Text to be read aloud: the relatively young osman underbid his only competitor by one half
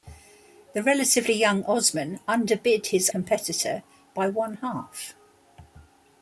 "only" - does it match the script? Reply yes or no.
no